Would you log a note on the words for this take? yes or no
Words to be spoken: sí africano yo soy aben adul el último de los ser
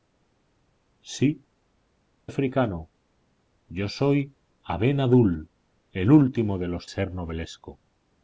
no